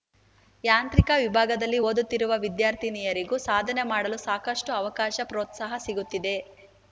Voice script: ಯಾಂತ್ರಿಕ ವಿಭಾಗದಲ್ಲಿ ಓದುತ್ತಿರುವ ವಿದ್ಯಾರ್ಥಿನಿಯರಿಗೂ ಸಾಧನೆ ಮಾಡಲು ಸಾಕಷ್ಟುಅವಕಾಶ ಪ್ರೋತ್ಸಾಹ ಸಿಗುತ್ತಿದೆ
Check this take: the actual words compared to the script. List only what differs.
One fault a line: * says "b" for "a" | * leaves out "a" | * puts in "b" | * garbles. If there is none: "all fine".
all fine